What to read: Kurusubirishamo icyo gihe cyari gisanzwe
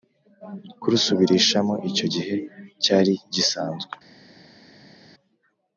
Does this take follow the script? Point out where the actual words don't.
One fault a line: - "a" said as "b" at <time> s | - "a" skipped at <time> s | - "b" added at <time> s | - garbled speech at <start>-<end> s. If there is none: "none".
none